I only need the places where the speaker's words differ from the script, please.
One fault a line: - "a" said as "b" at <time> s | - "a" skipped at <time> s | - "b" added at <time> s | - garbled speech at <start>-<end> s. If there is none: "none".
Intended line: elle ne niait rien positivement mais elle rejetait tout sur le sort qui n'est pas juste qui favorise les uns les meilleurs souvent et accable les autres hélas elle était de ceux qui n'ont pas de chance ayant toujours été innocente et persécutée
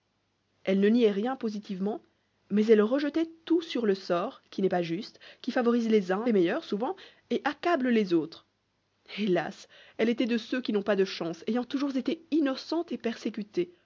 none